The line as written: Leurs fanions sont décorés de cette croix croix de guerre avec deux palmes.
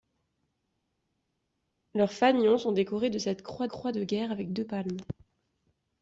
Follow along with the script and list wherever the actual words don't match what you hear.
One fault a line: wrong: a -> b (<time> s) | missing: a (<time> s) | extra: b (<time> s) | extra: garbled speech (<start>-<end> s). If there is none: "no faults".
no faults